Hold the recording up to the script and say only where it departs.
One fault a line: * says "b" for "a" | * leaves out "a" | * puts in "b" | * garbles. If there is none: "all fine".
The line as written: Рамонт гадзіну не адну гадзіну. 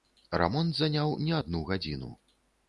* says "заняў" for "гадзіну"